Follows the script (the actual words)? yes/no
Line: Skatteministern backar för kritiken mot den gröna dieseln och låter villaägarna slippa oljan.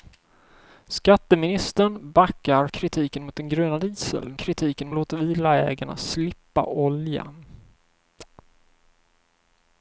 no